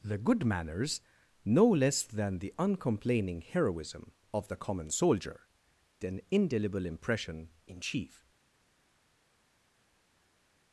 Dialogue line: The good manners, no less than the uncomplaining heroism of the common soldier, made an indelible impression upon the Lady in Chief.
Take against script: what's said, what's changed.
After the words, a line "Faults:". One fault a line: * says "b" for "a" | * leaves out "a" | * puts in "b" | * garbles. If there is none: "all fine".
The good manners, no less than the uncomplaining heroism of the common soldier, an indelible impression in Chief.
Faults:
* leaves out "made"
* leaves out "upon the Lady"